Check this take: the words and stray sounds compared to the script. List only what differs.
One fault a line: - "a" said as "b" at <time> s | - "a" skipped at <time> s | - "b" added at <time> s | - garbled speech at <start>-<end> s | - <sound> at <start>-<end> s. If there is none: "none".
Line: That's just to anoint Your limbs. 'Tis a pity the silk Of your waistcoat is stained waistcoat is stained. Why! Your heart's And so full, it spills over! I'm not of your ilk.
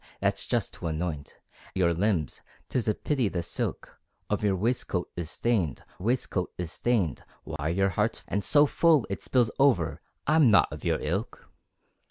- dropout at 7.6-7.6 s